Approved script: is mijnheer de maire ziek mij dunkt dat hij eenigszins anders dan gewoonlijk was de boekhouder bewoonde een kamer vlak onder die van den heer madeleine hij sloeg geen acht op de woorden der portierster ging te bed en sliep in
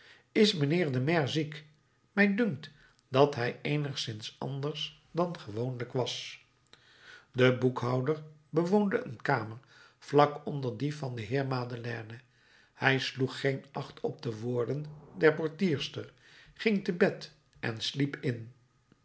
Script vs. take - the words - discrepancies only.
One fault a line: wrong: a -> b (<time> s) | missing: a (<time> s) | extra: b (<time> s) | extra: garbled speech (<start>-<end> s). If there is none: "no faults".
no faults